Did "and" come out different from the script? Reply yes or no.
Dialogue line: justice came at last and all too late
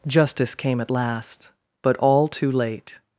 yes